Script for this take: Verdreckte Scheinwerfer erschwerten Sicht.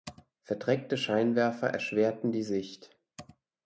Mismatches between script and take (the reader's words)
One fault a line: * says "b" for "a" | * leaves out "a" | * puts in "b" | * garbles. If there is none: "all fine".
* puts in "die"